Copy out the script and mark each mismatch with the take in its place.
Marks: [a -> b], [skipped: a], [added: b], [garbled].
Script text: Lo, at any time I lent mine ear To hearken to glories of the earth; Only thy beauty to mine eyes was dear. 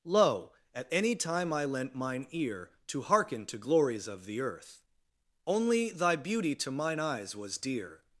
Lo, at any time I lent mine ear To hearken to glories of the earth; Only thy beauty to mine eyes was dear.